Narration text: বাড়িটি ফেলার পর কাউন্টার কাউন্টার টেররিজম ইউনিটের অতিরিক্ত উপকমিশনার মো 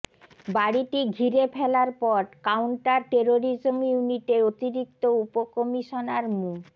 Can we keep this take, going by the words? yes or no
no